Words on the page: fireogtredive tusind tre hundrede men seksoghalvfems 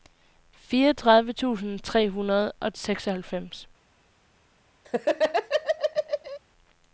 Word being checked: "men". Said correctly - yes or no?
no